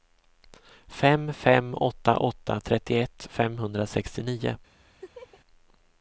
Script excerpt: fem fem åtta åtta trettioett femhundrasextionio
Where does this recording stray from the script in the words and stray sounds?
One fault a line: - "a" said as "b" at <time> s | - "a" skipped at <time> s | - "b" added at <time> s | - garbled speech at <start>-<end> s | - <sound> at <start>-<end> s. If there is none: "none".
- laugh at 5.0-5.4 s